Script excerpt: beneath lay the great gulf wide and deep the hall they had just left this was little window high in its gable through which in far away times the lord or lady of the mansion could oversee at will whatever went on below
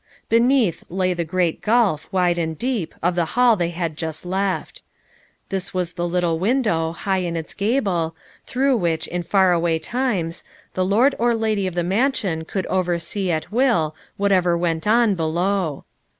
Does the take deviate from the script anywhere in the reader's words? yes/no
yes